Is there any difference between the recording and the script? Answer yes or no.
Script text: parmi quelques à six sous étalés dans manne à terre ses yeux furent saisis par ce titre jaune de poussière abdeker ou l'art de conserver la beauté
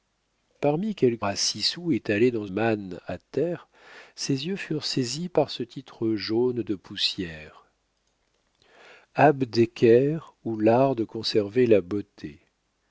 no